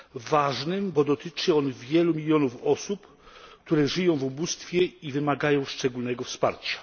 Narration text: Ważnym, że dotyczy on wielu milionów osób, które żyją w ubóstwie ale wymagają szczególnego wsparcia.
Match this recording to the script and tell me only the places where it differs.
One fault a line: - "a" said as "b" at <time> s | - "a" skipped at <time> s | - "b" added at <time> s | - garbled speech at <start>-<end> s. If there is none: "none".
- "że" said as "bo" at 0.9 s
- "ale" said as "i" at 4.8 s